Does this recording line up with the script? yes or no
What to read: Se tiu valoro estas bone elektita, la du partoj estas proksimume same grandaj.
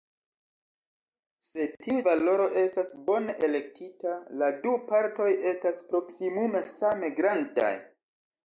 yes